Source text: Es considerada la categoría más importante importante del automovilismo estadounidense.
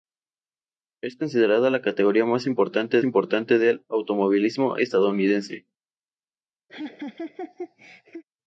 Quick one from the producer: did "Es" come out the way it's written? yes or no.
yes